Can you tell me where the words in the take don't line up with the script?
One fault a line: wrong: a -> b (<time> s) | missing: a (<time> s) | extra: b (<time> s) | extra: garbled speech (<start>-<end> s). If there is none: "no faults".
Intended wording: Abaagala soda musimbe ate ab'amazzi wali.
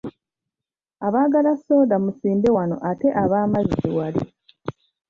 extra: wano (2.6 s)